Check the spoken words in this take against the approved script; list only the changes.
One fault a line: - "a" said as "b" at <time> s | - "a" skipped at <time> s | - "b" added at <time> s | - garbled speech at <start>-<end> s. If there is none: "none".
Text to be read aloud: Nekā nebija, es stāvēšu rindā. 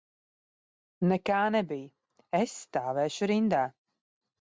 none